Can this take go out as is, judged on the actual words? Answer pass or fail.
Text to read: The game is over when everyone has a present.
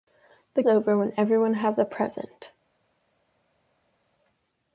fail